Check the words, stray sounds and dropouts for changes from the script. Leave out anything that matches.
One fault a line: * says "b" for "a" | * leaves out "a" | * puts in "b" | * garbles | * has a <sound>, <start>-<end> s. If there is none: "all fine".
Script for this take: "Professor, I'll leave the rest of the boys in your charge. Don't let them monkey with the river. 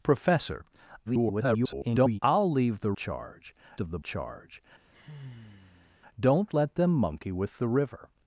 * garbles
* says "charge" for "rest"
* leaves out "boys in your"
* has a sigh, 4.9-6.0 s